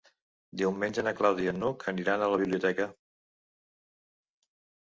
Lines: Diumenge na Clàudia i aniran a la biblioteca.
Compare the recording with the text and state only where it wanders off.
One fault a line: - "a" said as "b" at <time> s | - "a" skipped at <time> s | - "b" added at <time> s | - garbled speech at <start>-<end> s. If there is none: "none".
- "n'Hug" added at 1.6 s